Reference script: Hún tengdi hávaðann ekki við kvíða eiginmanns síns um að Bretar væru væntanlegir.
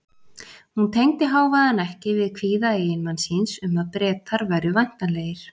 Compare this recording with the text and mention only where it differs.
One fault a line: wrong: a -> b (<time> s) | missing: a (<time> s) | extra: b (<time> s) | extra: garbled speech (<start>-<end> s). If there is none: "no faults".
no faults